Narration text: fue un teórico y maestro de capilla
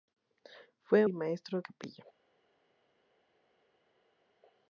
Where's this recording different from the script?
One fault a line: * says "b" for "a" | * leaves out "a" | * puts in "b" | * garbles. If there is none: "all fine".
* leaves out "un teórico"
* leaves out "de"